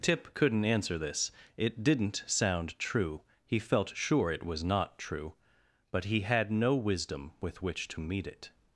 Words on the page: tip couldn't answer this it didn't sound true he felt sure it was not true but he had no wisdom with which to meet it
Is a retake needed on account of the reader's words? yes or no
no